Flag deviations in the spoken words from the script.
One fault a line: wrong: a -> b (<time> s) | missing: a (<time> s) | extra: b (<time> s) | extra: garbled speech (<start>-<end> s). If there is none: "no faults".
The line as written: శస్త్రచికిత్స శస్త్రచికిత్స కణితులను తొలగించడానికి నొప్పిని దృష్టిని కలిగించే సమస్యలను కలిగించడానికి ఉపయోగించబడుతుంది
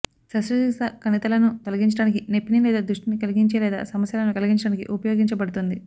missing: శస్త్రచికిత్స (0.9 s)
extra: లేదా (2.6 s)
extra: లేదా (3.6 s)